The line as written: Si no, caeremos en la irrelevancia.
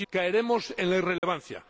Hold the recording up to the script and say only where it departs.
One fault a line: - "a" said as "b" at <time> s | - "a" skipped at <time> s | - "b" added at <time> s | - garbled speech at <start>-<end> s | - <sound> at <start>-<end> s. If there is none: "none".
- "no" skipped at 0.1 s
- dropout at 1.2-1.2 s